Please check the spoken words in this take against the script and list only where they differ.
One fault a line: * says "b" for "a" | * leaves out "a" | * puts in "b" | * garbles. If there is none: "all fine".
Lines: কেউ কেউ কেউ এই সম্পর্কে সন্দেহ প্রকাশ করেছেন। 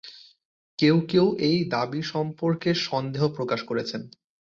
* says "এই দাবি" for "কেউ এই"